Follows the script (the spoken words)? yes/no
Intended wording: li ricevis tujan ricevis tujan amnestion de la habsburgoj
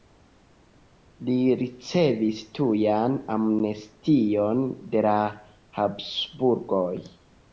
no